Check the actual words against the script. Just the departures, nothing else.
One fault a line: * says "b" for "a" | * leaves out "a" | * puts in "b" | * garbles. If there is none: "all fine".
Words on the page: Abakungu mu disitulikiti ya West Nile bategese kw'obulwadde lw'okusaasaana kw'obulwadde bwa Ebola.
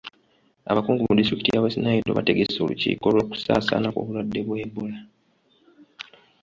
* says "olukiiko" for "kw'obulwadde"